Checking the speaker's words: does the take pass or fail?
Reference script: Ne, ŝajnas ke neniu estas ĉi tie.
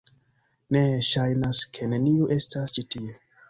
pass